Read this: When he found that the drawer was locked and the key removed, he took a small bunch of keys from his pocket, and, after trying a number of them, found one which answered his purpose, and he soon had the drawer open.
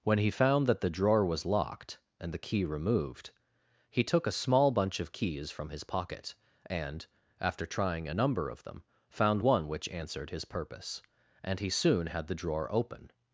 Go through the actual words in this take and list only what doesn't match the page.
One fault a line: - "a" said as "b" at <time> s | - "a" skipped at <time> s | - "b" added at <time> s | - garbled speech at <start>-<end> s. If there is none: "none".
none